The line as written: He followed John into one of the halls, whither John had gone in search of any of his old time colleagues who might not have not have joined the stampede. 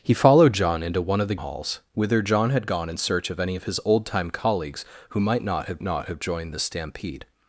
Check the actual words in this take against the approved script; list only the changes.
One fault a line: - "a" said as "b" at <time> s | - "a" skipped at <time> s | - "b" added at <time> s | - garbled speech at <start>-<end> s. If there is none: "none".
none